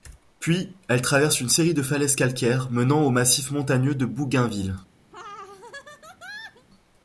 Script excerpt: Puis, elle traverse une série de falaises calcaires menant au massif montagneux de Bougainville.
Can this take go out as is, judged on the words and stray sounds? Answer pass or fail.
fail